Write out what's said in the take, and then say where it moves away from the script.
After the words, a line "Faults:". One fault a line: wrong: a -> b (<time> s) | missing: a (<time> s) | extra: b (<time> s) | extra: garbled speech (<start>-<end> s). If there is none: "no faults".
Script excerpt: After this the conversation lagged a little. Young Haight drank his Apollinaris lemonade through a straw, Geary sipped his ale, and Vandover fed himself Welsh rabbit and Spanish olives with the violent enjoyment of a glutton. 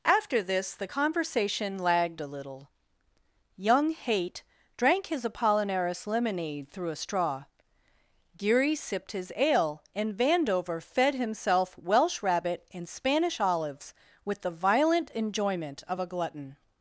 After this the conversation lagged a little. Young Haight drank his Apollinaris lemonade through a straw, Geary sipped his ale, and Vandover fed himself Welsh rabbit and Spanish olives with the violent enjoyment of a glutton.
Faults:
no faults